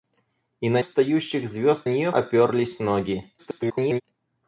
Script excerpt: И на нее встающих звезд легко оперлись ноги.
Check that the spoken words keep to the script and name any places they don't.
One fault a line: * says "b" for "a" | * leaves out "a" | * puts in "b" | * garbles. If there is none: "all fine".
* leaves out "нее"
* says "нее" for "легко"
* garbles